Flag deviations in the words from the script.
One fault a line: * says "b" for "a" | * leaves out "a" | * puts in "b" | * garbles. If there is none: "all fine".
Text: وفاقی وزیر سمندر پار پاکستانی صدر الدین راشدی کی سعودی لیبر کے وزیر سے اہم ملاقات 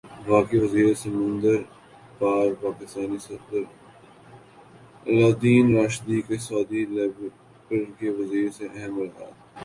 all fine